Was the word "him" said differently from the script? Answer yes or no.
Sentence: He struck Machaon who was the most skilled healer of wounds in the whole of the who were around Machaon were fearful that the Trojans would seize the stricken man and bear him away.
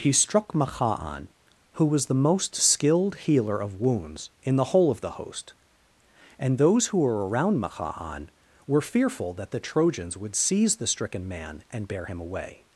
no